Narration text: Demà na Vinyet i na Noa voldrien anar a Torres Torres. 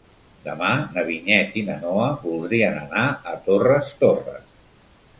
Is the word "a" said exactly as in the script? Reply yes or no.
yes